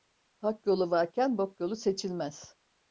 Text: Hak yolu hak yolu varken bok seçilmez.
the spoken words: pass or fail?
fail